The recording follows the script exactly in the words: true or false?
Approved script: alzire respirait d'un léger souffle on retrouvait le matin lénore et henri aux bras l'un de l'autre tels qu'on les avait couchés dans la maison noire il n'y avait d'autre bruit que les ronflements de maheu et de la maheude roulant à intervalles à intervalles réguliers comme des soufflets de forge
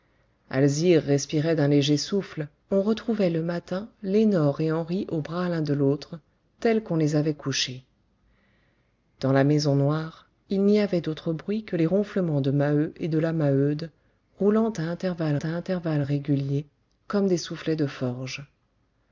true